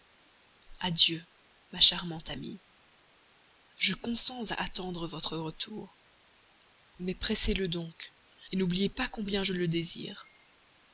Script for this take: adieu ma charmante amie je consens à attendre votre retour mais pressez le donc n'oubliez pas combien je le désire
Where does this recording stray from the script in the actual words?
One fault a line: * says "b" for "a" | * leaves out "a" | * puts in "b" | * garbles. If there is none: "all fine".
all fine